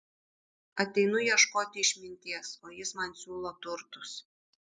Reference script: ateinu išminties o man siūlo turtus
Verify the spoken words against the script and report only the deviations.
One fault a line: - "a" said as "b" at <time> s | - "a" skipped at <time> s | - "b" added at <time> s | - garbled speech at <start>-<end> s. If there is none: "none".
- "ieškoti" added at 1.2 s
- "jis" added at 2.8 s